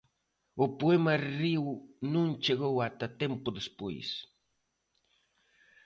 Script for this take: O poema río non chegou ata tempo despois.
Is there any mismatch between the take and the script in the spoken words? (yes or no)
no